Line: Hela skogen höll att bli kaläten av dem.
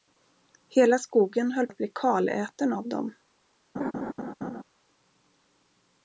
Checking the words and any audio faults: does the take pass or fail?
fail